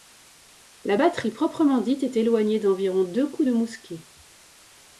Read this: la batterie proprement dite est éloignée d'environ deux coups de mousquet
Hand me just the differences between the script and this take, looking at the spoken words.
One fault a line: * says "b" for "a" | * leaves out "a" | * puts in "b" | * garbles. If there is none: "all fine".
all fine